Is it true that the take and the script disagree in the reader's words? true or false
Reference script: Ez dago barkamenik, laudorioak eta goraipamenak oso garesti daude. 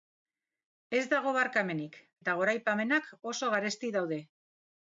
true